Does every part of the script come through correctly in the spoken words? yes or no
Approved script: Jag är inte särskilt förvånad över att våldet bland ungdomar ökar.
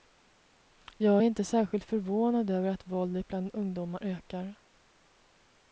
yes